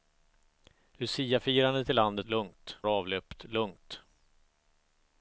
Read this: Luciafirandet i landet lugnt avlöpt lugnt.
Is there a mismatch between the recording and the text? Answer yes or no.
no